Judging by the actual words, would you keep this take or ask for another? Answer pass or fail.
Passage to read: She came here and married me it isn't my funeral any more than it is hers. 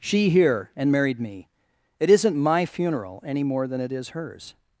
fail